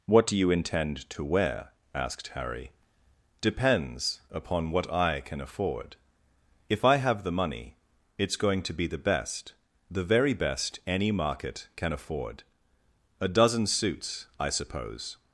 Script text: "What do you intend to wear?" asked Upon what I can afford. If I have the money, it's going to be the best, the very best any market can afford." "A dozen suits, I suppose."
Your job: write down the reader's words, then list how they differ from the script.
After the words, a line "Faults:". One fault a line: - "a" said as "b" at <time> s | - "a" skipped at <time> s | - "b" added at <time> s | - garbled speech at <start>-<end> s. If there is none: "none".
"What do you intend to wear?" asked Harry. "Depends upon what I can afford. If I have the money, it's going to be the best, the very best any market can afford." "A dozen suits, I suppose."
Faults:
- "Harry Depends" added at 2.3 s